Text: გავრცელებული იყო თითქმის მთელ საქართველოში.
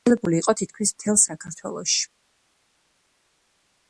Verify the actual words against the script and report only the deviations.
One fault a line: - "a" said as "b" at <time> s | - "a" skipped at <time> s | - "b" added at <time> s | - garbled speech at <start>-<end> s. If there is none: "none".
none